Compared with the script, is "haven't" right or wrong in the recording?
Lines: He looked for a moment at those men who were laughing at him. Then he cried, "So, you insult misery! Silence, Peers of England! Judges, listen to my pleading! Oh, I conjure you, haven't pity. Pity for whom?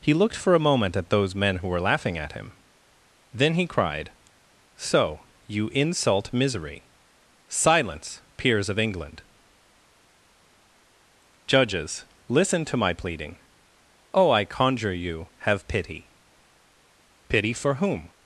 wrong